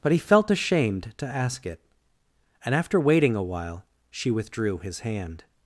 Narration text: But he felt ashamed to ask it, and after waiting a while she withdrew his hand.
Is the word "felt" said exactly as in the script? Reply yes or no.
yes